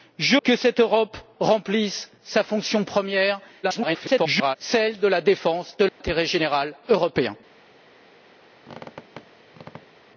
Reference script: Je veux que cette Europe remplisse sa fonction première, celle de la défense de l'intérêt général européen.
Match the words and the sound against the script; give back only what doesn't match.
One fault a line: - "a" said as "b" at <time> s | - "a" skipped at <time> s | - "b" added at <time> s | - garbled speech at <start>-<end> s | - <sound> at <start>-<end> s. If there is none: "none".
- "veux" skipped at 0.4 s
- garbled speech at 3.6-4.6 s
- dropout at 5.9-6.0 s
- squeak at 8.6-10.1 s